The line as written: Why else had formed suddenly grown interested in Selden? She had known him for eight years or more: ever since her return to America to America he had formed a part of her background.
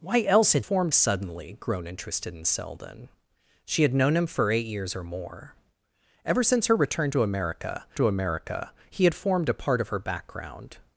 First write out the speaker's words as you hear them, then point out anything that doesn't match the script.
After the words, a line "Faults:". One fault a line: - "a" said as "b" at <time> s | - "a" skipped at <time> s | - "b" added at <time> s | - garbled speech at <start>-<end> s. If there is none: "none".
Why else had formed suddenly grown interested in Selden? She had known him for eight years or more: ever since her return to America to America he had formed a part of her background.
Faults:
none